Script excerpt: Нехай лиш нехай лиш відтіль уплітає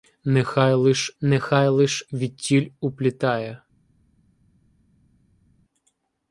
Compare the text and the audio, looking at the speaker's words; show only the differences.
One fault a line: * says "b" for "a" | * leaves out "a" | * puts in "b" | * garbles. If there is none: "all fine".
all fine